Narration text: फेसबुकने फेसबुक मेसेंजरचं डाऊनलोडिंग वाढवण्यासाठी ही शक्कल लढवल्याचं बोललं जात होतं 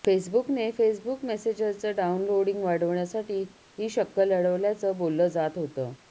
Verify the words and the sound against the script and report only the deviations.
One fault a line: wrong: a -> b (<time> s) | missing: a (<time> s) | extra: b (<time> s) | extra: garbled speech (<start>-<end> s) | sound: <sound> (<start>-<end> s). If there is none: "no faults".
no faults